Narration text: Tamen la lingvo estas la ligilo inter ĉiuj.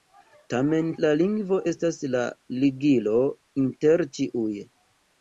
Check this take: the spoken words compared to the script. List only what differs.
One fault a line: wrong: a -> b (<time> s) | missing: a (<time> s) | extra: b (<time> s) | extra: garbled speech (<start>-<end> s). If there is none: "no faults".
no faults